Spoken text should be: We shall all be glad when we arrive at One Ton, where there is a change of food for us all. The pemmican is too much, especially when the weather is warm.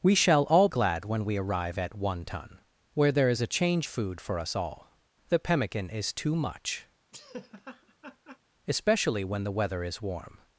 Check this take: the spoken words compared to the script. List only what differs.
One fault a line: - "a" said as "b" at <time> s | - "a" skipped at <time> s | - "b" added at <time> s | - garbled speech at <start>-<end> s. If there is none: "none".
- "be" skipped at 0.7 s
- "of" skipped at 3.9 s